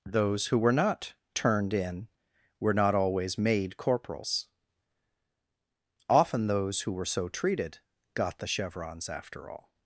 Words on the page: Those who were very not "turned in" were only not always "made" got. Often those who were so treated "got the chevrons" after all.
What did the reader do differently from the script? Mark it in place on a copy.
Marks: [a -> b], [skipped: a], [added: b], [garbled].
Those who were [skipped: very] not "turned in" were [skipped: only] not always "made" [got. -> corporals] Often those who were so treated "got the chevrons" after all.